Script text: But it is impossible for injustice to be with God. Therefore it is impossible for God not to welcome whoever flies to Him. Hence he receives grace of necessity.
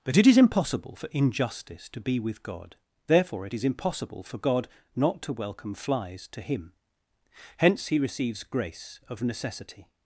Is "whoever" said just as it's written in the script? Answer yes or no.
no